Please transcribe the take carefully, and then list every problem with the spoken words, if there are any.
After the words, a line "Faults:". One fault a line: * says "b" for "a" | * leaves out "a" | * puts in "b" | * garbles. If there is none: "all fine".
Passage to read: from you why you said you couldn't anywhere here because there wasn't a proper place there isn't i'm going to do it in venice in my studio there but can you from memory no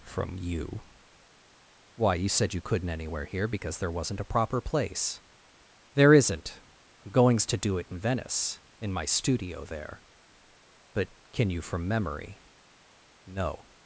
from you why you said you couldn't anywhere here because there wasn't a proper place there isn't i'm goings to do it in venice in my studio there but can you from memory no
Faults:
* says "goings" for "going"